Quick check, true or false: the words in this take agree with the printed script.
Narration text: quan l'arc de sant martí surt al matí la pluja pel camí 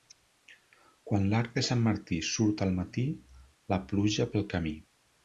true